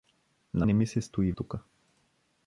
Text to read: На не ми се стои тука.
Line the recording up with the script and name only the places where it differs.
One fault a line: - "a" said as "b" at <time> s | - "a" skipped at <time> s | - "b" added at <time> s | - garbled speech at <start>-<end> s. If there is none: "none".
none